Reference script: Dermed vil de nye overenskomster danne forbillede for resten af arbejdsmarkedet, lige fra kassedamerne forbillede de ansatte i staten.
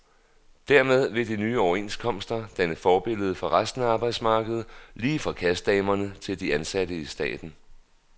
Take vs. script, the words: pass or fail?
fail